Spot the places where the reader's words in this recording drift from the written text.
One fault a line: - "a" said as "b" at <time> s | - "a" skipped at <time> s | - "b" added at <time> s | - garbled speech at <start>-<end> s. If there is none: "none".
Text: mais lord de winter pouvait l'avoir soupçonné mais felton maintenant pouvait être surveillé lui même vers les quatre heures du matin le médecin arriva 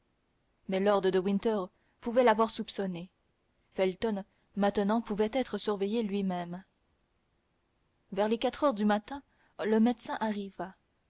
- "mais" skipped at 3.1 s